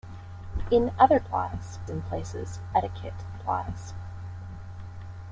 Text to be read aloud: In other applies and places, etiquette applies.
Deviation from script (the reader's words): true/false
false